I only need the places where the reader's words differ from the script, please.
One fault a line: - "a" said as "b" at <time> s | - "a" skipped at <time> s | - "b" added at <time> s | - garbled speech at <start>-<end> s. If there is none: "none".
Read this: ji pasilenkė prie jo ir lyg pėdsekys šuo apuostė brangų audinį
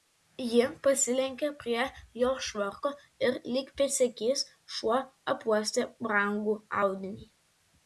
- "švarko" added at 2.5 s